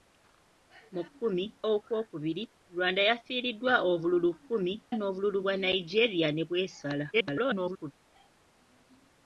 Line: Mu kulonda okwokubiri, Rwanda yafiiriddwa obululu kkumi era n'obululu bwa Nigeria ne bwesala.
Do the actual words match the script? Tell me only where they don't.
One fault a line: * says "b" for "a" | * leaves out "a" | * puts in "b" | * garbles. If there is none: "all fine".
* says "kkumi" for "kulonda"
* leaves out "era"
* garbles